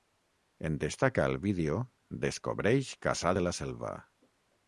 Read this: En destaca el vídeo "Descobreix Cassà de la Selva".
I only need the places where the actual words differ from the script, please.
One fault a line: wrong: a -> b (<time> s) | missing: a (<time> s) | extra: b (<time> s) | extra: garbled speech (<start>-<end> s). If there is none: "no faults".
no faults